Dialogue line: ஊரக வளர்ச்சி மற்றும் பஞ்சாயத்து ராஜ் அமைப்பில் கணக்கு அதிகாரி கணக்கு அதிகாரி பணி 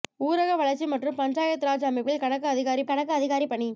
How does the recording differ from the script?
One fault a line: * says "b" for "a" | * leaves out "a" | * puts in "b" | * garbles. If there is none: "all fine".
all fine